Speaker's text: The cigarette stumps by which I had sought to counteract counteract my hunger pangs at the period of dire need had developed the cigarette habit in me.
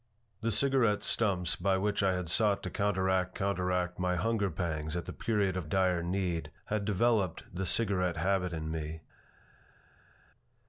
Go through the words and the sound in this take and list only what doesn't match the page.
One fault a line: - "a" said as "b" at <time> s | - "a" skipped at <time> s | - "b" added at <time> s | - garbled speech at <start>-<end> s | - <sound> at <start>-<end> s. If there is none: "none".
none